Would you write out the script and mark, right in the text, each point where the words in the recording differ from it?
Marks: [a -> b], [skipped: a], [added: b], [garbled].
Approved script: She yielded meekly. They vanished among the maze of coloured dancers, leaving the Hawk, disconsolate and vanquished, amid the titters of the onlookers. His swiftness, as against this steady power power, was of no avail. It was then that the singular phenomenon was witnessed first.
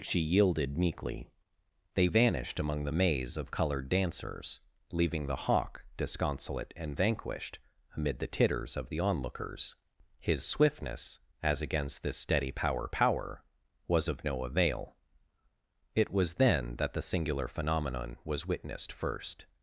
She yielded meekly. They vanished among the maze of coloured dancers, leaving the Hawk, disconsolate and vanquished, amid the titters of the onlookers. His swiftness, as against this steady power power, was of no avail. It was then that the singular phenomenon was witnessed first.